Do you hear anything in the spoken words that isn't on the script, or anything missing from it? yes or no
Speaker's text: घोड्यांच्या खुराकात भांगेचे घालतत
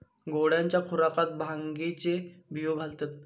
yes